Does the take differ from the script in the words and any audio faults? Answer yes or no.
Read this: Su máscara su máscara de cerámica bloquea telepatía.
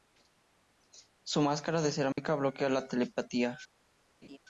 yes